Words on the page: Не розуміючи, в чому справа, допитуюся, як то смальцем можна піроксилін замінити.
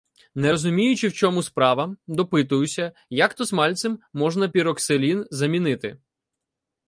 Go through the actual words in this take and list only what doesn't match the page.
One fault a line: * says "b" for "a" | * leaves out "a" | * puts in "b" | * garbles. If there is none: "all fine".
all fine